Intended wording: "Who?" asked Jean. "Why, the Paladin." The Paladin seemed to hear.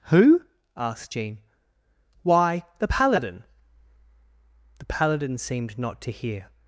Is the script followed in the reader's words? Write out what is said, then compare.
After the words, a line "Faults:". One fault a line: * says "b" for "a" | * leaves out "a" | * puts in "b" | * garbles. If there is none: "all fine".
"Who?" asked Jean. "Why, the Paladin." The Paladin seemed not to hear.
Faults:
* puts in "not"